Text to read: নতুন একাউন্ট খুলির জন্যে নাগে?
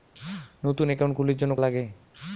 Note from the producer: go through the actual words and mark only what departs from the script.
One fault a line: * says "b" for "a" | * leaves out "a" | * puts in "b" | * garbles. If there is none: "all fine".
all fine